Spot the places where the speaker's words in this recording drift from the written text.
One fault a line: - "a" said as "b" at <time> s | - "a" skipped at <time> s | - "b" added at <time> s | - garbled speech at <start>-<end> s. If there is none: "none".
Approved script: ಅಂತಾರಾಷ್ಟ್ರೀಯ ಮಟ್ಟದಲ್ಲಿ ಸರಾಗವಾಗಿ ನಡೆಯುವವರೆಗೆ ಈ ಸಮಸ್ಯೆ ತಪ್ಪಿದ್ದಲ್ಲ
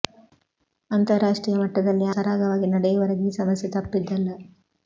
none